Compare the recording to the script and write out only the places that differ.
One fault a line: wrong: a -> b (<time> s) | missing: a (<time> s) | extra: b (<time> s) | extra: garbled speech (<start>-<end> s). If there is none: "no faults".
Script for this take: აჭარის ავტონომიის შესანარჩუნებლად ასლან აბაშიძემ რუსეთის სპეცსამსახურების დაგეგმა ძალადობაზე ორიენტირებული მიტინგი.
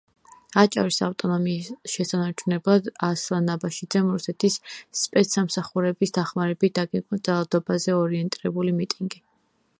extra: დახმარებით (6.2 s)